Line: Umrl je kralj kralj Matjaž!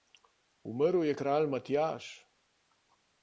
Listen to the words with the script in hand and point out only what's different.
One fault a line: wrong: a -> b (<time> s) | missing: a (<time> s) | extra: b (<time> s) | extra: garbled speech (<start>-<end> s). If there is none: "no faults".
missing: kralj (1.5 s)